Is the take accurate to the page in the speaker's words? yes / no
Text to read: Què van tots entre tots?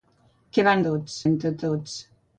yes